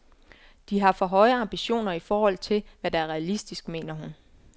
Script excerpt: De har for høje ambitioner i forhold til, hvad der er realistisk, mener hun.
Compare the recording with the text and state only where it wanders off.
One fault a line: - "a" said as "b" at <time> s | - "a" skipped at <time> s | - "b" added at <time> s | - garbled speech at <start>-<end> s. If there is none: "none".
none